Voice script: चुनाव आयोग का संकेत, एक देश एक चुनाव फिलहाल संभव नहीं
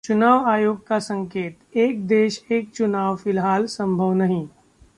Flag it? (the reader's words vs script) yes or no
no